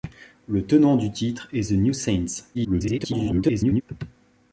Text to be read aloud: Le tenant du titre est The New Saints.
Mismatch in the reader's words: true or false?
true